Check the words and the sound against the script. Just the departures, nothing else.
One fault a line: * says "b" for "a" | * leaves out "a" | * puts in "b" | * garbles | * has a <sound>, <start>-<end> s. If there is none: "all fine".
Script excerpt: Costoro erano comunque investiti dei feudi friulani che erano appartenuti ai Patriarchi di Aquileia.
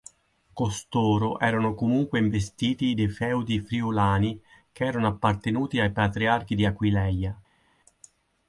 all fine